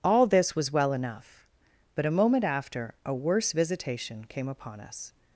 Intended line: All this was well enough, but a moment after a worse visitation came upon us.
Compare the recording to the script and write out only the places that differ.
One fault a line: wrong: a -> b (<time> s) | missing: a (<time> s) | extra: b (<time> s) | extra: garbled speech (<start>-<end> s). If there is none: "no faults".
no faults